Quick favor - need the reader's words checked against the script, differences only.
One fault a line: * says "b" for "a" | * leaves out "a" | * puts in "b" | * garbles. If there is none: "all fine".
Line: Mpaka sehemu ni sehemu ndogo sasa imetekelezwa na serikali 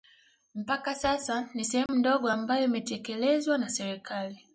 * says "sasa" for "sehemu"
* says "ambayo" for "sasa"